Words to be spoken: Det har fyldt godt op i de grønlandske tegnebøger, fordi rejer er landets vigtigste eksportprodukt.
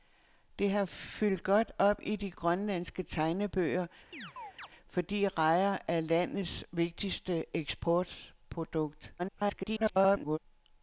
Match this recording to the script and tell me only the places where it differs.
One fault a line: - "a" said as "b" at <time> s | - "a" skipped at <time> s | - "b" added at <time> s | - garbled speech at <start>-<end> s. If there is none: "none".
- garbled speech at 9.2-10.4 s